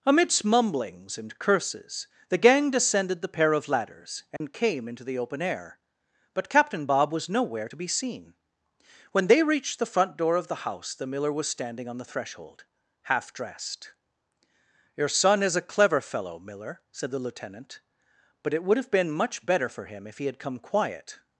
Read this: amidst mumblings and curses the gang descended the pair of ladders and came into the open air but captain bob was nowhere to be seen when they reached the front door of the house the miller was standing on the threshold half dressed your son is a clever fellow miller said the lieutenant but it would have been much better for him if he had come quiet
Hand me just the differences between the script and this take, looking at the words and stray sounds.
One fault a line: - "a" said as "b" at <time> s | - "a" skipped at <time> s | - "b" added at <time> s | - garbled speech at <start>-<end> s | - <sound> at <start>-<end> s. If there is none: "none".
- dropout at 4.4-4.4 s